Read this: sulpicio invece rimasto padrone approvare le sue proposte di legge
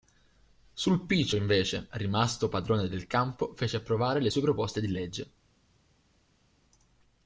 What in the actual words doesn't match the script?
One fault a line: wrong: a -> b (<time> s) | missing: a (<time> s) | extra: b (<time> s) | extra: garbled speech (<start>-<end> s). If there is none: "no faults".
extra: del campo fece (2.9 s)